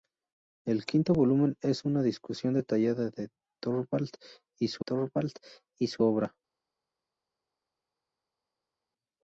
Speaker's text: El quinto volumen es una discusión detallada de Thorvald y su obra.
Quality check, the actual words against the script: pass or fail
fail